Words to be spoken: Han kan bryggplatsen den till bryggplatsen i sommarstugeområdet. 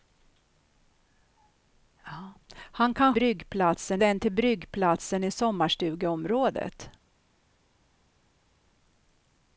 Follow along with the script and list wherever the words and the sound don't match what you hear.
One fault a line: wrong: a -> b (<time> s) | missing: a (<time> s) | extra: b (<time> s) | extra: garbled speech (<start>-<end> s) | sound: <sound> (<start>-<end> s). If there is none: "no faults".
no faults